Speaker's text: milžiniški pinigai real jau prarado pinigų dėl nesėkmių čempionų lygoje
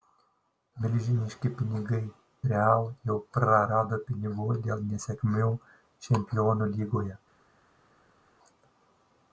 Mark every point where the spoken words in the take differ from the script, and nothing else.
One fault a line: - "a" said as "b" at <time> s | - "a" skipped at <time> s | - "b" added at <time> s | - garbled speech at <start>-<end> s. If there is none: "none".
none